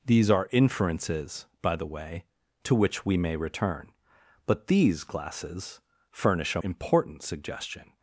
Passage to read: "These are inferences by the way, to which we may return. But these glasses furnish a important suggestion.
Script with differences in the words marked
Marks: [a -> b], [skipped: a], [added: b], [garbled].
"These are inferences by the way, to which we may return. But these glasses furnish a important suggestion.